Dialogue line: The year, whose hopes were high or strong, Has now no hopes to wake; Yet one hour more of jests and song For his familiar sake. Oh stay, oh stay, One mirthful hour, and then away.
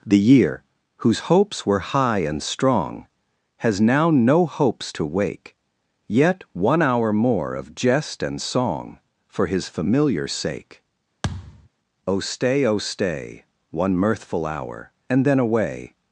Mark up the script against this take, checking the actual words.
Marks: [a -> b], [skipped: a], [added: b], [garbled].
The year, whose hopes were high [or -> and] strong, Has now no hopes to wake; Yet one hour more of [jests -> jest] and song For his familiar sake. Oh stay, oh stay, One mirthful hour, and then away.